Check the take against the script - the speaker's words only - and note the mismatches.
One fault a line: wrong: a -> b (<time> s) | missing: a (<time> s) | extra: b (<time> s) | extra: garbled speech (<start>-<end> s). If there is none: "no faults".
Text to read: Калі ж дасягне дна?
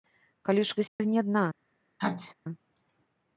no faults